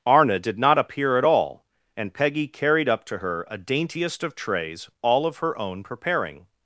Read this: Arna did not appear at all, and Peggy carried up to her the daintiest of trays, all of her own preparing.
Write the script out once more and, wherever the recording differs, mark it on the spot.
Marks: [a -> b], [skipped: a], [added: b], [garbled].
Arna did not appear at all, and Peggy carried up to her [the -> a] daintiest of trays, all of her own preparing.